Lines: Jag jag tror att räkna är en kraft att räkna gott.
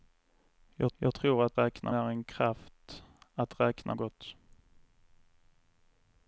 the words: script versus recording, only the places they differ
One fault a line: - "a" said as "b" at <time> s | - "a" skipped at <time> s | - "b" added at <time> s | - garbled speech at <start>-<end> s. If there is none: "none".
none